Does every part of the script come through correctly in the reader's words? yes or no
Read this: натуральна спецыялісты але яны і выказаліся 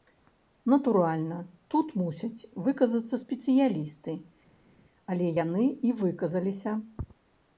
no